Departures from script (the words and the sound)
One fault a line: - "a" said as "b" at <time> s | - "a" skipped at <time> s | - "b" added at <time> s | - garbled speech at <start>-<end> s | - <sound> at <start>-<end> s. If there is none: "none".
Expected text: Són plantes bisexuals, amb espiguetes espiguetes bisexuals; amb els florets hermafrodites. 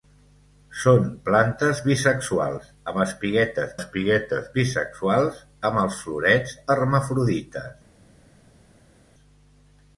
none